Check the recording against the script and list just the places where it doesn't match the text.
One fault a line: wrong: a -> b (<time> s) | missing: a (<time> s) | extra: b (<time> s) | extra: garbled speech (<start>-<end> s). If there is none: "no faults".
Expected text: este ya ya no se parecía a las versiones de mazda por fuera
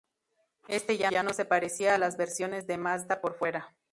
no faults